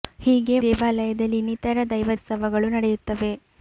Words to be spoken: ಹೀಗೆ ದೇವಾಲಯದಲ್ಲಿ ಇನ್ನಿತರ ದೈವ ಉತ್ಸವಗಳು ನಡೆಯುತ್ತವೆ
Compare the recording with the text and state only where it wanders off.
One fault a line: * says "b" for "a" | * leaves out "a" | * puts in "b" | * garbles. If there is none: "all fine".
all fine